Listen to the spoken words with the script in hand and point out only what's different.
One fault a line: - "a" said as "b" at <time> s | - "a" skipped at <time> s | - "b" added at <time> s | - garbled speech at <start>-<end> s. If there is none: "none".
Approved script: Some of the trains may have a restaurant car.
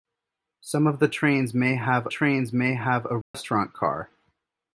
- "trains may have" added at 2.1 s